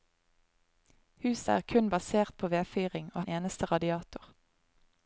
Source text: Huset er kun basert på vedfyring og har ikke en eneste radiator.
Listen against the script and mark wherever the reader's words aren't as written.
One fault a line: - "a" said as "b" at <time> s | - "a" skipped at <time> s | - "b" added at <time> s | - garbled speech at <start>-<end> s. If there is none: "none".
- "har ikke" skipped at 3.2 s